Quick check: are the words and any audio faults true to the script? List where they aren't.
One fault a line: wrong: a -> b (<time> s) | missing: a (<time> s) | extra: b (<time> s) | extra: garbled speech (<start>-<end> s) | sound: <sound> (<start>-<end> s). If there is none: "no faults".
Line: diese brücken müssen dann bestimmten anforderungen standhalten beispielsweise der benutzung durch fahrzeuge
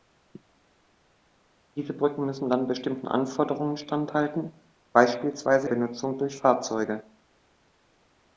missing: der (5.7 s)